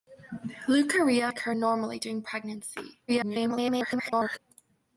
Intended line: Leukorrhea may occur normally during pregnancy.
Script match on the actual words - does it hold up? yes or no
no